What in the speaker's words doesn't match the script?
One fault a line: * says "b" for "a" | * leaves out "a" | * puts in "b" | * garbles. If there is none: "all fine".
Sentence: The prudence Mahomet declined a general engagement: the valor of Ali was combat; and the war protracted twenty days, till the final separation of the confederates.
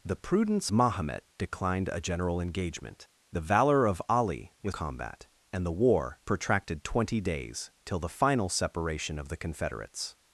all fine